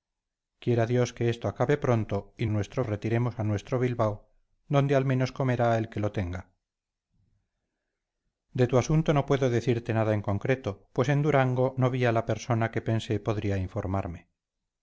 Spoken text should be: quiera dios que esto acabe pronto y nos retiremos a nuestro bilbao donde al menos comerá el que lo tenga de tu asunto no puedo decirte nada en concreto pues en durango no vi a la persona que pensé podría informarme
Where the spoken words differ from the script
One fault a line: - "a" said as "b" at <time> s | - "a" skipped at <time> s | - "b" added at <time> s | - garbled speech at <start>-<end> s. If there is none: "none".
- "nos" said as "nuestro" at 2.5 s